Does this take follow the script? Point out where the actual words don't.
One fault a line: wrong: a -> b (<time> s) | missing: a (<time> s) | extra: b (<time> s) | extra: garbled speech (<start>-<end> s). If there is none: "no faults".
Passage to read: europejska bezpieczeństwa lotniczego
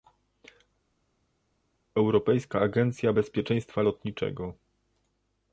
extra: agencja (2.6 s)